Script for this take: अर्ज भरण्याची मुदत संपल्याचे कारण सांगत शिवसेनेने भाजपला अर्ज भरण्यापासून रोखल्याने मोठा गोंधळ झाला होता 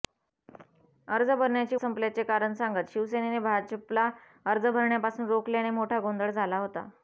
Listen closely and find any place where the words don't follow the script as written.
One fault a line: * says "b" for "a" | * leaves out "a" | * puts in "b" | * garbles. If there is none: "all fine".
* leaves out "मुदत"